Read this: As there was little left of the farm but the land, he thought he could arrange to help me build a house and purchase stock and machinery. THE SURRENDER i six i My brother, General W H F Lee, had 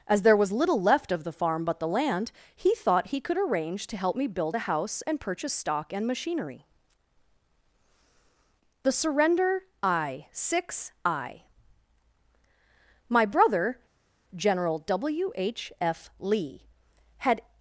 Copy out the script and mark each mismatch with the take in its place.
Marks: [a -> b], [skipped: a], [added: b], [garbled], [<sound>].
As there was little left of the farm but the land, he thought he could arrange to help me build a house and purchase stock and machinery. THE SURRENDER i six i My brother, General W H F Lee, had